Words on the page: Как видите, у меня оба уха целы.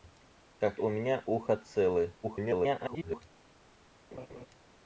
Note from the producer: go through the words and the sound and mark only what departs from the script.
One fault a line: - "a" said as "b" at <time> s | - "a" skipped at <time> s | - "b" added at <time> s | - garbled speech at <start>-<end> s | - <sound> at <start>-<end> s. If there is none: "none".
- "видите" skipped at 0.8 s
- "оба" skipped at 1.2 s
- garbled speech at 2.2-3.2 s
- laugh at 4.1-4.5 s